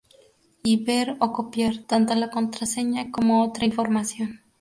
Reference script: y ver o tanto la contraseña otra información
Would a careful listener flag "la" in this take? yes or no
no